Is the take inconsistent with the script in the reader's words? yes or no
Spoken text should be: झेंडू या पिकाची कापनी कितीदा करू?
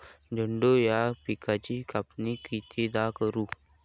no